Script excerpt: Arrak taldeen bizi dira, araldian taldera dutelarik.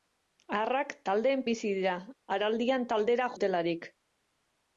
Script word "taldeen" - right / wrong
right